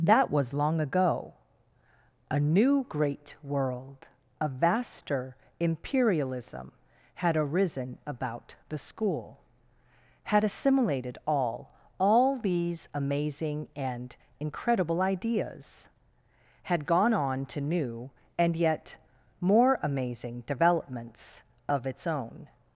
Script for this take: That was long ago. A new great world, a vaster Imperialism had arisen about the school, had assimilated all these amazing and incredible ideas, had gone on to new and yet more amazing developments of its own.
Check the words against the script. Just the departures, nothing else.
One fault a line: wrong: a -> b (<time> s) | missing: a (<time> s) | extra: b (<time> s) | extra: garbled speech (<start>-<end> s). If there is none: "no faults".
extra: all (12.0 s)